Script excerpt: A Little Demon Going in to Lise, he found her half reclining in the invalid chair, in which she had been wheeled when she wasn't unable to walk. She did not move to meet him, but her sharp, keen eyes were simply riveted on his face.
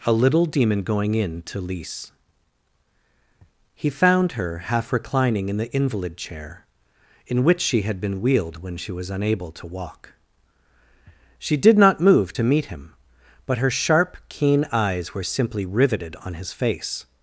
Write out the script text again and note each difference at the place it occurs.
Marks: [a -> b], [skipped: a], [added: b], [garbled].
A Little Demon Going in to Lise, he found her half reclining in the invalid chair, in which she had been wheeled when she [wasn't -> was] unable to walk. She did not move to meet him, but her sharp, keen eyes were simply riveted on his face.